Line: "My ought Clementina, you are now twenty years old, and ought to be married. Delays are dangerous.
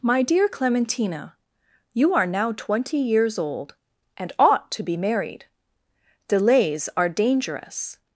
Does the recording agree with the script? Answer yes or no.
no